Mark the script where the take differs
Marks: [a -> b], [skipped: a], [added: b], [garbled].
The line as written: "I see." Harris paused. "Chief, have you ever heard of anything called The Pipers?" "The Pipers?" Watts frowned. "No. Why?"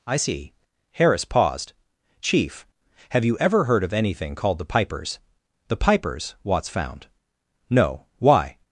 "I see." Harris paused. "Chief, have you ever heard of anything called The Pipers?" "The Pipers?" Watts [frowned. -> found] "No. Why?"